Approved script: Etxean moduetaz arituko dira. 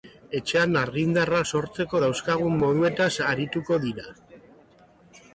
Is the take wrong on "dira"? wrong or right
right